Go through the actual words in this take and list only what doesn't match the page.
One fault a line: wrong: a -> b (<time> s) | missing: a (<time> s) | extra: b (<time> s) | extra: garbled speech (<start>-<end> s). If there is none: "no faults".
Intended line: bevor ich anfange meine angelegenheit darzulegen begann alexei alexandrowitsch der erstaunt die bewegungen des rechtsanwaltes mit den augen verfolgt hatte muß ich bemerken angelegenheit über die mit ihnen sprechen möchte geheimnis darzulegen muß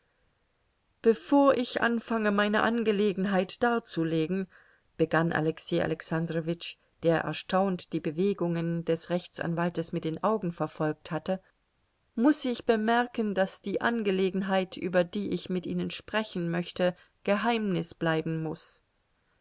extra: daß die (13.3 s)
extra: ich (15.3 s)
wrong: darzulegen -> bleiben (17.9 s)